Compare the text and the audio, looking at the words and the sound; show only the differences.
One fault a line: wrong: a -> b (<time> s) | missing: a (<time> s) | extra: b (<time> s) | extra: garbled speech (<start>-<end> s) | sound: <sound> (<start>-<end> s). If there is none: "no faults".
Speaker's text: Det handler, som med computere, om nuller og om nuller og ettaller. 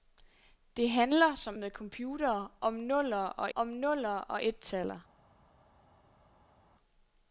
no faults